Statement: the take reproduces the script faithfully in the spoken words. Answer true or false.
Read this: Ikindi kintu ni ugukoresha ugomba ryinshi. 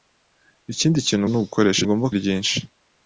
true